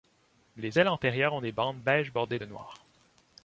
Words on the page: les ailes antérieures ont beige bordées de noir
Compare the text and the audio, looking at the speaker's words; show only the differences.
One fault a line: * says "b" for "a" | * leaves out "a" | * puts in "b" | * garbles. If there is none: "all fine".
* puts in "des bandes"